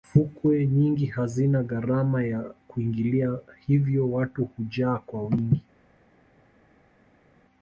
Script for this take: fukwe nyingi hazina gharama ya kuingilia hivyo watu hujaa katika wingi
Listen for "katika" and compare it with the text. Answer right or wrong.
wrong